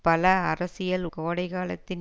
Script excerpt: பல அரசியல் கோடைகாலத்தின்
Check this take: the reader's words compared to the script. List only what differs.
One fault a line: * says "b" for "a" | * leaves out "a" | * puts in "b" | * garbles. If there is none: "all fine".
all fine